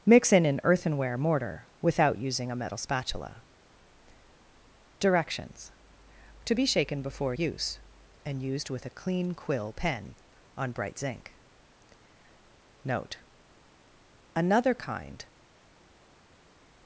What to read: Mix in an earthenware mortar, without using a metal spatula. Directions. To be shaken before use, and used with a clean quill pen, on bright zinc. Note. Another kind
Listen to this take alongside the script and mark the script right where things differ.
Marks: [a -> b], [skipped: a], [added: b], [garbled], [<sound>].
Mix in an earthenware mortar, without using a metal spatula. Directions. To be shaken before use, and used with a clean quill pen, on bright zinc. Note. Another kind